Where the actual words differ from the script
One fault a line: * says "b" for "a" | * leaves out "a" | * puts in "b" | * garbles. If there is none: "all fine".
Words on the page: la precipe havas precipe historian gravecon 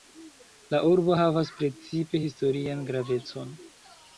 * says "urbo" for "precipe"